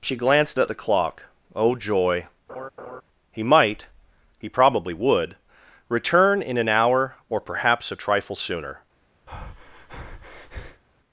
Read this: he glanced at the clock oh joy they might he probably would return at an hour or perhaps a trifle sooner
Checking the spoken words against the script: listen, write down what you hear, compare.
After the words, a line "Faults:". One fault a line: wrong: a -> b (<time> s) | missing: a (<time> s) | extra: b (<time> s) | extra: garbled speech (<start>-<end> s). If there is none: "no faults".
she glanced at the clock oh joy he might he probably would return in an hour or perhaps a trifle sooner
Faults:
wrong: he -> she (0.0 s)
wrong: they -> he (3.3 s)
wrong: at -> in (6.4 s)